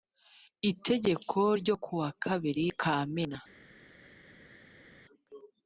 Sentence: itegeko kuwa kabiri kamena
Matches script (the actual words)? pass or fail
fail